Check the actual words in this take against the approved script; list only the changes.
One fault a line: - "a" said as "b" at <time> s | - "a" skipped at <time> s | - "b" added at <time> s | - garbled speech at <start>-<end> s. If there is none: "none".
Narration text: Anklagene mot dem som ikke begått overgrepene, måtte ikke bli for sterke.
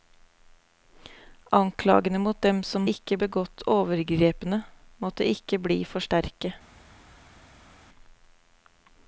none